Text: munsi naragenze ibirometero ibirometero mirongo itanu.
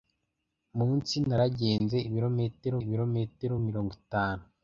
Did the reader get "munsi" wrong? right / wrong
right